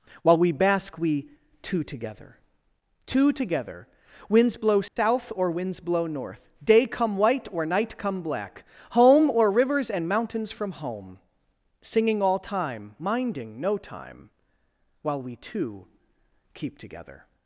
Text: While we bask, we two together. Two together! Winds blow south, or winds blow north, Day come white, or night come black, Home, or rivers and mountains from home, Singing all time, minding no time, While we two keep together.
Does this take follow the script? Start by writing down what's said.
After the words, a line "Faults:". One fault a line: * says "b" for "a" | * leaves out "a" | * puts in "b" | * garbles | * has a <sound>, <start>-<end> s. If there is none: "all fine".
While we bask, we two together. Two together! Winds blow south, or winds blow north, Day come white, or night come black, Home, or rivers and mountains from home, Singing all time, minding no time, While we two keep together.
Faults:
* has a dropout, 4.9-5.0 s